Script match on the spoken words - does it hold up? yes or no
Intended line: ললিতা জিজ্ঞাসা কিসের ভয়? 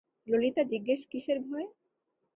yes